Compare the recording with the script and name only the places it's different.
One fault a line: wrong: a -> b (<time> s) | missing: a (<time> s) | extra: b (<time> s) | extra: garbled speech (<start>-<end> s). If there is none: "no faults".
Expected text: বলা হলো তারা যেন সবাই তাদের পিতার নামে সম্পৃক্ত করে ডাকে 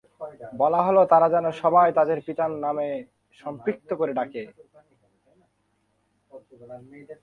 no faults